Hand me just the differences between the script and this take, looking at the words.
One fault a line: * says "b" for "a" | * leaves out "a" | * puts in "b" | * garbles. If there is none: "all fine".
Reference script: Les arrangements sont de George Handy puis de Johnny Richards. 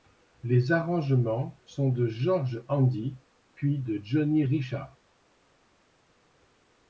all fine